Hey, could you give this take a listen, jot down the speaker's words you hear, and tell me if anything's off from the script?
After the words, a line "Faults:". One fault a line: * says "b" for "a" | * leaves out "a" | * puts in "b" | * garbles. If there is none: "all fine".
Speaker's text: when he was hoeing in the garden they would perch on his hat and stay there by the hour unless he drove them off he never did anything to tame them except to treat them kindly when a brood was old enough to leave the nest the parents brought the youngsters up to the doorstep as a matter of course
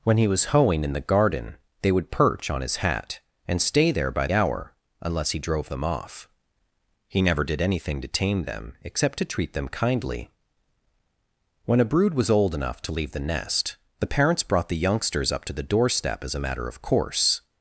when he was hoeing in the garden they would perch on his hat and stay there by hour unless he drove them off he never did anything to tame them except to treat them kindly when a brood was old enough to leave the nest the parents brought the youngsters up to the doorstep as a matter of course
Faults:
* leaves out "the"